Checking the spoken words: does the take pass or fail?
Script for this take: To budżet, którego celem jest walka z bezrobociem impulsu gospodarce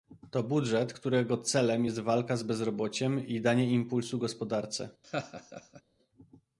fail